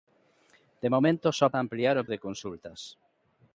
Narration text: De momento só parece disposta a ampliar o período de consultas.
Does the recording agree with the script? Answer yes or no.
no